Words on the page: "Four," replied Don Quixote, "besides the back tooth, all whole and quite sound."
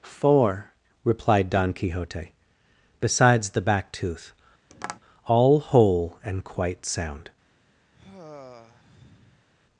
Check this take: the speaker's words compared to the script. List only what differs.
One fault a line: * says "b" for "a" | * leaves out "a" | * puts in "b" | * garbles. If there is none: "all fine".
all fine